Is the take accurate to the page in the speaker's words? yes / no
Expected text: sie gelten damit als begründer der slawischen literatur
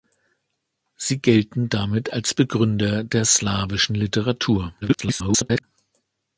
no